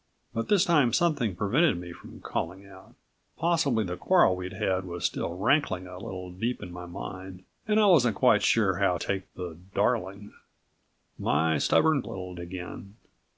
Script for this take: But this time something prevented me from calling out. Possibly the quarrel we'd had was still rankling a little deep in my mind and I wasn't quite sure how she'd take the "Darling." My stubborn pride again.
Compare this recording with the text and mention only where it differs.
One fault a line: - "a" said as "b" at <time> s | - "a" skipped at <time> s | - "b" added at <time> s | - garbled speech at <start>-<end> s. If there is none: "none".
- "she'd" skipped at 9.0 s
- "pride" said as "little" at 12.0 s